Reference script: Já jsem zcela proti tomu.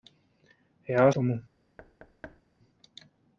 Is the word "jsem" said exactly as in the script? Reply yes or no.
no